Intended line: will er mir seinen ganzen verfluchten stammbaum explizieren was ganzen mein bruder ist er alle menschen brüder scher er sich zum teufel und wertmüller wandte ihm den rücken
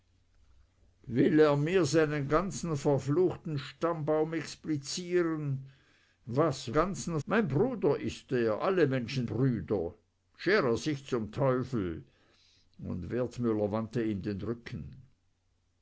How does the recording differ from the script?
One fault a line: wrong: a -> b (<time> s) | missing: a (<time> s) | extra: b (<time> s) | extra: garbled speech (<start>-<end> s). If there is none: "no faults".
no faults